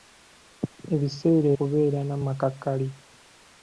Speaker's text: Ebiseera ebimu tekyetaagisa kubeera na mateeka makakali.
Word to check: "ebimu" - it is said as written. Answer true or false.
false